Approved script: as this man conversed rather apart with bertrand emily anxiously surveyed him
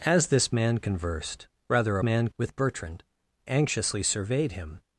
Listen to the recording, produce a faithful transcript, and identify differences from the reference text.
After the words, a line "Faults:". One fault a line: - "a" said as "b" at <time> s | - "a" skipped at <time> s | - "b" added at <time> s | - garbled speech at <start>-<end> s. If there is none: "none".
as this man conversed rather man with bertrand anxiously surveyed him
Faults:
- "apart" said as "man" at 2.0 s
- "emily" skipped at 3.0 s